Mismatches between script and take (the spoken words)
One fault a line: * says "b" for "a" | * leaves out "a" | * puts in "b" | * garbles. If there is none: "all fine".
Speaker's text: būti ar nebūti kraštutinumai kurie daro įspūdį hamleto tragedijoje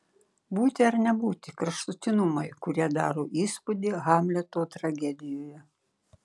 all fine